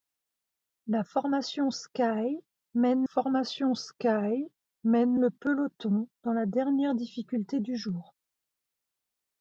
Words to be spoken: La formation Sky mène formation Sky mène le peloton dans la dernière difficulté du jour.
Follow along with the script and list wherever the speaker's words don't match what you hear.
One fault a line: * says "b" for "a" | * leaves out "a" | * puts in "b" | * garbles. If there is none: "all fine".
all fine